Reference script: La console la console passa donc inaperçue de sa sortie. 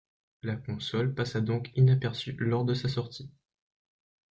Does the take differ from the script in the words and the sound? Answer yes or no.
yes